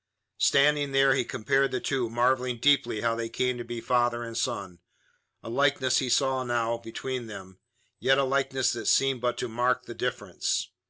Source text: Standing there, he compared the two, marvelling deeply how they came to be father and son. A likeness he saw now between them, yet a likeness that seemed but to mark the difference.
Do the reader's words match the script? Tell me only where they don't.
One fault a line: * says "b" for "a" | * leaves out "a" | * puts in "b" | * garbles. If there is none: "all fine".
all fine